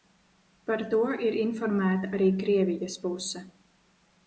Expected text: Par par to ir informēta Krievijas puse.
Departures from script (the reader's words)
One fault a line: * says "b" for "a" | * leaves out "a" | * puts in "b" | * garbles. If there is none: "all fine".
* leaves out "par"
* puts in "arī"